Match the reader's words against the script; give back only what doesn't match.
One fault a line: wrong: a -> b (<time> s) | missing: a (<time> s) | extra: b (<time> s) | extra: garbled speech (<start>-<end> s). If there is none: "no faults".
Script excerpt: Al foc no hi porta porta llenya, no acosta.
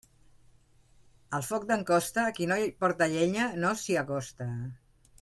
extra: d'en Costa qui (1.7 s)
missing: porta (3.1 s)
extra: s'hi (3.8 s)